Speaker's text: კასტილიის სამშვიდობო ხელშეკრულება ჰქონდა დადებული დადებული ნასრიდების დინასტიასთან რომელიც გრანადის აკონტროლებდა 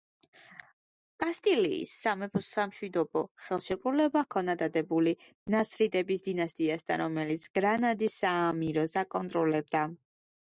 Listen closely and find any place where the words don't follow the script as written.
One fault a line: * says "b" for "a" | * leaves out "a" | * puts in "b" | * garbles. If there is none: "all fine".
* puts in "სამეფოს"
* leaves out "დადებული"
* puts in "საამიროს"